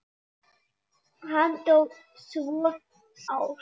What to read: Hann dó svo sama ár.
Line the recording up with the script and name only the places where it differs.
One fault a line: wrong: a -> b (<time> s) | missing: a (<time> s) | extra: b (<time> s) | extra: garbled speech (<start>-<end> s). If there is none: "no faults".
missing: sama (2.7 s)